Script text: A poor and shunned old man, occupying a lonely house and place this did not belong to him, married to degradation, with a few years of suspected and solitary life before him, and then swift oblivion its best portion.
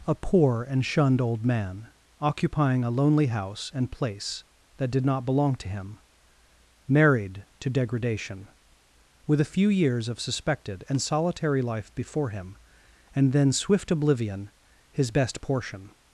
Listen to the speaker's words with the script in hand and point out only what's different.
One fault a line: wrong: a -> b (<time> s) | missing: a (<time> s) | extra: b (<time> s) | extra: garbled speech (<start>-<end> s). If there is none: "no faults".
wrong: this -> that (4.8 s)
wrong: its -> his (14.9 s)